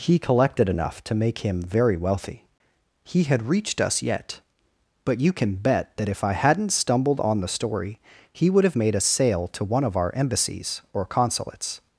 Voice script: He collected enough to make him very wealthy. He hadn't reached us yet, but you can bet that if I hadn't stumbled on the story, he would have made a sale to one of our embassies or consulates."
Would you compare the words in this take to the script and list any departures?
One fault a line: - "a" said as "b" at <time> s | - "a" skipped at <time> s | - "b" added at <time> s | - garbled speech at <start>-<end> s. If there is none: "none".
- "hadn't" said as "had" at 3.2 s